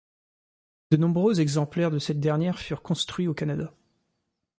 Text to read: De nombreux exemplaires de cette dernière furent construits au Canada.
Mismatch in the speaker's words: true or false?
false